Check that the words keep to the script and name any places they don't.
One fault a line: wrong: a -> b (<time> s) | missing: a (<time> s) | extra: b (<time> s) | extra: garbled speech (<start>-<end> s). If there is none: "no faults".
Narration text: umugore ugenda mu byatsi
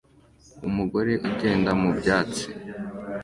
no faults